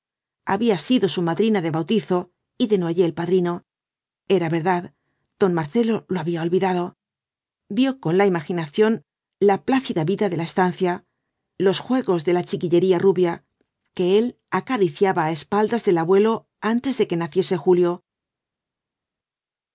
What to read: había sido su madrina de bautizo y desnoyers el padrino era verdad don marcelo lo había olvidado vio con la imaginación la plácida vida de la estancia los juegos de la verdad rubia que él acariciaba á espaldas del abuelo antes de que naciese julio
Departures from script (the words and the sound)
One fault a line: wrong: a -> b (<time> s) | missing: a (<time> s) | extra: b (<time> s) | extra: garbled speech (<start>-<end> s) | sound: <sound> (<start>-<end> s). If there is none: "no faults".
wrong: verdad -> chiquillería (12.4 s)